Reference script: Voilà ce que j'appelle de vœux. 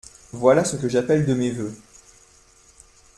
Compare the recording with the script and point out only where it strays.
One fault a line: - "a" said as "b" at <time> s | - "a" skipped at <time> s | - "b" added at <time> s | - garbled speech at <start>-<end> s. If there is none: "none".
- "mes" added at 1.4 s